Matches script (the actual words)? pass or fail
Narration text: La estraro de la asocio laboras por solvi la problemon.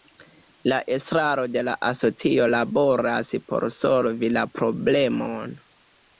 pass